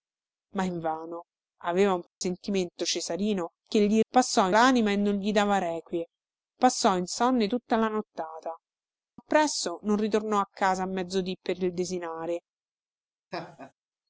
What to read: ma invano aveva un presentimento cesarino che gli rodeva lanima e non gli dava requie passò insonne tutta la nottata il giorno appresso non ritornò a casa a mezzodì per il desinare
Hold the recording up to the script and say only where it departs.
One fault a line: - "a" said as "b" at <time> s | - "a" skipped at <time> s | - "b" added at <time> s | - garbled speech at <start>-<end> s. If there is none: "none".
- "rodeva" said as "passò" at 4.1 s
- "il giorno" skipped at 8.5 s